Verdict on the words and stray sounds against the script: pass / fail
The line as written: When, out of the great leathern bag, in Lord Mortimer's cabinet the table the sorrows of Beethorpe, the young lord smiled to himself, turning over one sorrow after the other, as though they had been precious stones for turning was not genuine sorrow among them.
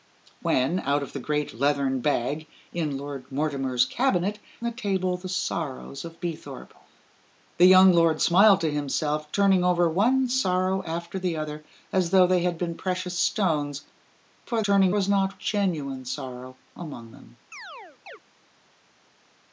fail